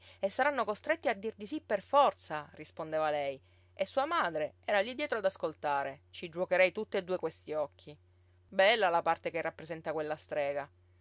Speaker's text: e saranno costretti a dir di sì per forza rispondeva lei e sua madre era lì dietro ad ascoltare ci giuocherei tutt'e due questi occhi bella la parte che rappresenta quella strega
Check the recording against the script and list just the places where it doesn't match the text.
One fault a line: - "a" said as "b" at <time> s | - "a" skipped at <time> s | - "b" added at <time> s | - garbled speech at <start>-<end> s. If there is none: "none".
none